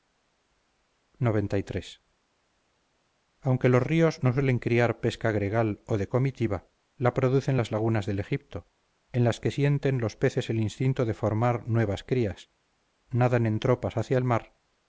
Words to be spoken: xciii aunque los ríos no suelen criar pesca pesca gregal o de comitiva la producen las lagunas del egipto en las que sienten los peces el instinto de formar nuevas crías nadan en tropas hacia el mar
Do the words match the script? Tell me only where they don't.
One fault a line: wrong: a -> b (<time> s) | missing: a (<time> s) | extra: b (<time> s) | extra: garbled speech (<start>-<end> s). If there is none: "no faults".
missing: pesca (5.3 s)